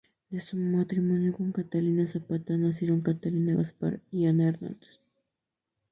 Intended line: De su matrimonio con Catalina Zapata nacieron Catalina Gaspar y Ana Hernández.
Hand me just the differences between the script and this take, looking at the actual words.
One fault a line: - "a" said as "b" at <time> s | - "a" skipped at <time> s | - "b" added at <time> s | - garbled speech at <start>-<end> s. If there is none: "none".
none